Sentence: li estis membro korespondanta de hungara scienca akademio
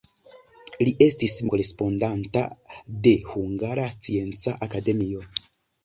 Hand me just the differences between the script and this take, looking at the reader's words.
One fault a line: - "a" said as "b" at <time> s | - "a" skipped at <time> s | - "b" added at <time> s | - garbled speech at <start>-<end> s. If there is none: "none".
- "membro" skipped at 1.4 s